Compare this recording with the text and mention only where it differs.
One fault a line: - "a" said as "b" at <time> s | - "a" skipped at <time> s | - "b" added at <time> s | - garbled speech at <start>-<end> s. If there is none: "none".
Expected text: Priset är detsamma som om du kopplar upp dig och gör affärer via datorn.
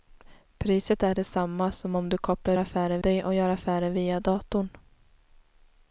- "upp" said as "affärer" at 2.6 s